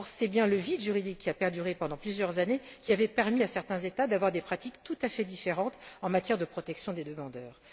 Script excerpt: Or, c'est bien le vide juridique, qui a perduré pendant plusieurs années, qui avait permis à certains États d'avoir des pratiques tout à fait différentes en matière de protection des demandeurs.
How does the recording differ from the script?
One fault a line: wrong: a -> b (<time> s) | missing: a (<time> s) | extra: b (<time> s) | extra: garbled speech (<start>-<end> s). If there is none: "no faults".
no faults